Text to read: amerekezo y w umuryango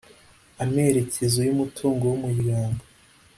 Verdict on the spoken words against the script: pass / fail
fail